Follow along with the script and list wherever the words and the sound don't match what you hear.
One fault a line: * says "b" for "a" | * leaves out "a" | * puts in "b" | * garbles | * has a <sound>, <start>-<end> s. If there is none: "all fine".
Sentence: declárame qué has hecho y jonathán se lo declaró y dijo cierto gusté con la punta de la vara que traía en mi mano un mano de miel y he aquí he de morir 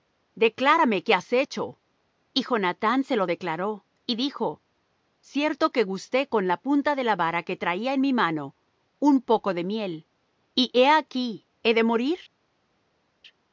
* puts in "que"
* says "poco" for "mano"